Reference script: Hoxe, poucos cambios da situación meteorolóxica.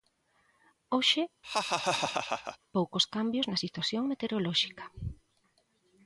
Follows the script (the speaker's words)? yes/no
no